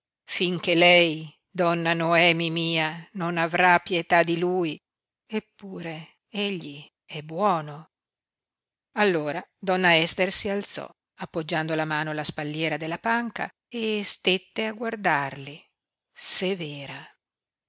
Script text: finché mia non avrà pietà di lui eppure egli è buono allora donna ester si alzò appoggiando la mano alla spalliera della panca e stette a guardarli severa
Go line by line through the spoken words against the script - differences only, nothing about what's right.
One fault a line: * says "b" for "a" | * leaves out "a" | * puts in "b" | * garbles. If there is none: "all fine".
* puts in "lei donna noemi"